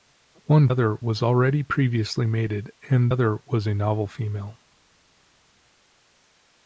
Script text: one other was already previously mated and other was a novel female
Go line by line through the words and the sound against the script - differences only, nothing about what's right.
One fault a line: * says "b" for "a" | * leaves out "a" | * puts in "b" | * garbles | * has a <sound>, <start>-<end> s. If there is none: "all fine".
all fine